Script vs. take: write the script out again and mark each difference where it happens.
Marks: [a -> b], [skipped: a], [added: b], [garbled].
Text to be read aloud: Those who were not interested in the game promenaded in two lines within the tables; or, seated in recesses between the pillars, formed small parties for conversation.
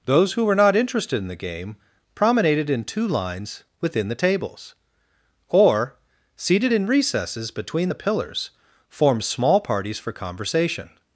Those who were not interested in the game promenaded in two lines within the tables; or, seated in recesses between the pillars, formed small parties for conversation.